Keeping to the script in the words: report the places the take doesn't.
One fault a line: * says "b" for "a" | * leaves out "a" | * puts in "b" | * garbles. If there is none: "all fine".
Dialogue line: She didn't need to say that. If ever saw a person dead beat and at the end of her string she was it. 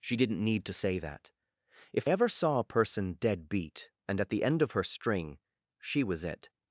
all fine